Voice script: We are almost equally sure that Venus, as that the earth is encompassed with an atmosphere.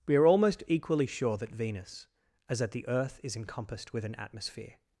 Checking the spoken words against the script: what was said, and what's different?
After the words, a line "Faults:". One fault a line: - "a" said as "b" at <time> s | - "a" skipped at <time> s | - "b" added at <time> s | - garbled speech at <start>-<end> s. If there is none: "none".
We are almost equally sure that Venus, as that the earth is encompassed with an atmosphere.
Faults:
none